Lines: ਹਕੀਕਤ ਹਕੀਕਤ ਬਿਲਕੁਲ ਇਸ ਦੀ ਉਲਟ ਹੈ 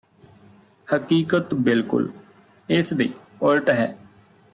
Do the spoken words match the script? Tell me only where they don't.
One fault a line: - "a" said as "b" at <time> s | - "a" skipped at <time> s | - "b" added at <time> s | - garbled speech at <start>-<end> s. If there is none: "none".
- "ਹਕੀਕਤ" skipped at 1.6 s
- "ਦੀ" said as "ਦੇ" at 2.9 s